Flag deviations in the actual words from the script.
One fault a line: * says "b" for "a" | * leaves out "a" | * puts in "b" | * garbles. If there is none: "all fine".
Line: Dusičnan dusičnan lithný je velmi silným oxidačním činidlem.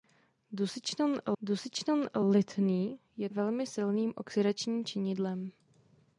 all fine